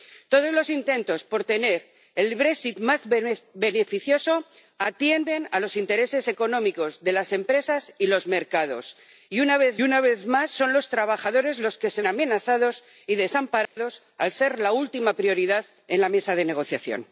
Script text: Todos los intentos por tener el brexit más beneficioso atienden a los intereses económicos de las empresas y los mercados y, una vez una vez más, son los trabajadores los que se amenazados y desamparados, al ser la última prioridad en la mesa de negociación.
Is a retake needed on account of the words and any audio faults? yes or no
yes